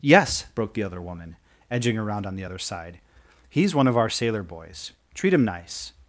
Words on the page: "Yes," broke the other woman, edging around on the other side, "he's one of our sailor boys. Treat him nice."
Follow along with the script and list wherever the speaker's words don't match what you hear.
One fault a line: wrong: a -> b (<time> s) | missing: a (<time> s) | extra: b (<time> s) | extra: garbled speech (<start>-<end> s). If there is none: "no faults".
no faults